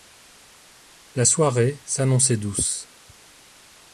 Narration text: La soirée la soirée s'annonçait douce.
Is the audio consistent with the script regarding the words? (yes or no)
no